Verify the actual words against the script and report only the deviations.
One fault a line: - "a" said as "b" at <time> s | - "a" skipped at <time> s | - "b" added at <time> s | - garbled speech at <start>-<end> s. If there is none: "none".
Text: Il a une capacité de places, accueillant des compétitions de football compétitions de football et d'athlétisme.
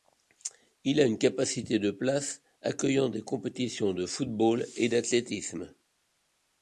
- "compétitions de football" skipped at 4.7 s